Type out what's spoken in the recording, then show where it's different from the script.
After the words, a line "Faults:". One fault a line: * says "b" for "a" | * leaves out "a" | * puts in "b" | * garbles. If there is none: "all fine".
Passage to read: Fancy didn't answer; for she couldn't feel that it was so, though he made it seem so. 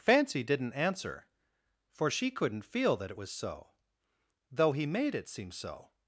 Fancy didn't answer; for she couldn't feel that it was so, though he made it seem so.
Faults:
all fine